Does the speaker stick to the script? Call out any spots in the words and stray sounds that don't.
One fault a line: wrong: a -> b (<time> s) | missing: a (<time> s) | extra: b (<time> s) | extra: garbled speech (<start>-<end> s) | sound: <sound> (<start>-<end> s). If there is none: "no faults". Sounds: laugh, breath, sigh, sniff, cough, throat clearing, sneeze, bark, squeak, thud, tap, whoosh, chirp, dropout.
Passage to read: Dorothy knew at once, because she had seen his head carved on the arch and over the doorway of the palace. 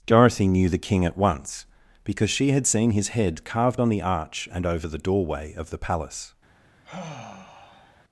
extra: the King (0.7 s)
sound: sigh (6.8-8.0 s)